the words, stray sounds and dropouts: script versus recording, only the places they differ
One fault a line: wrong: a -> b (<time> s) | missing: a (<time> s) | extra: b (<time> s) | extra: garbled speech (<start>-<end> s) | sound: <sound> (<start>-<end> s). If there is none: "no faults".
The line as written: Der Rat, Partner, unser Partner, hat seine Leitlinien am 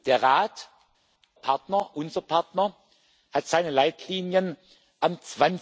no faults